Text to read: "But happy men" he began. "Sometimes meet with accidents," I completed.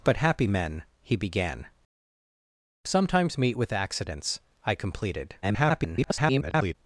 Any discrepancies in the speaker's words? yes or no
yes